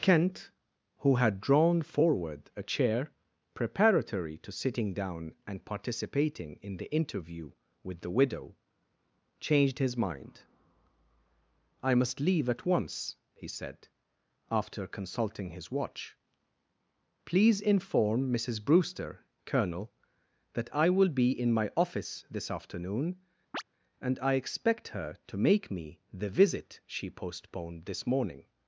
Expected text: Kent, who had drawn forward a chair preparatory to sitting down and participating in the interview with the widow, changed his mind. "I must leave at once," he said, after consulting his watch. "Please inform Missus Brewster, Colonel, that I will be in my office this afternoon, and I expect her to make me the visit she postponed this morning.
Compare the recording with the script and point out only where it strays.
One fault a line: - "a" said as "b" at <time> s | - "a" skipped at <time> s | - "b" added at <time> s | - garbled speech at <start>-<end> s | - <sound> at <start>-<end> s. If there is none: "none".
- chirp at 23.5-23.6 s